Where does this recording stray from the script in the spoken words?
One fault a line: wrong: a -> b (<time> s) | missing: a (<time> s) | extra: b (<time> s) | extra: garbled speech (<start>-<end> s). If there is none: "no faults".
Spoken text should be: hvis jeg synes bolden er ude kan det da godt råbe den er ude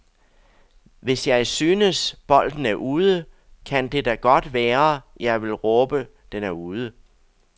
extra: være jeg vil (4.5 s)